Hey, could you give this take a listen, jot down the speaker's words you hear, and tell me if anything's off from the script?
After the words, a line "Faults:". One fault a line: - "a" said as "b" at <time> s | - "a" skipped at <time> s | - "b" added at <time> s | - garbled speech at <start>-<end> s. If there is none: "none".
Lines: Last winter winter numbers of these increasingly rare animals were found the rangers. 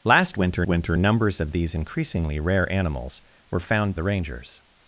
Last winter winter numbers of these increasingly rare animals were found the rangers.
Faults:
none